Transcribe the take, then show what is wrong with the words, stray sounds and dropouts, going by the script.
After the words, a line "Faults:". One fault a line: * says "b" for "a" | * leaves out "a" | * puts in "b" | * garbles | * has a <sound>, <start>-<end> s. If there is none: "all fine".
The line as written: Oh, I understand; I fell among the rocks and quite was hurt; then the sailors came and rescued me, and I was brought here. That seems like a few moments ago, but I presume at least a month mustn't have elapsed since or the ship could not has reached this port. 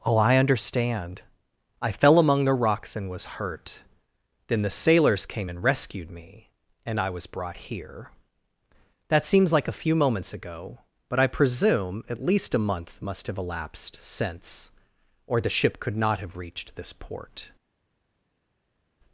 Oh, I understand; I fell among the rocks and was hurt; then the sailors came and rescued me, and I was brought here. That seems like a few moments ago, but I presume at least a month must have elapsed since or the ship could not have reached this port.
Faults:
* leaves out "quite"
* says "must" for "mustn't"
* says "have" for "has"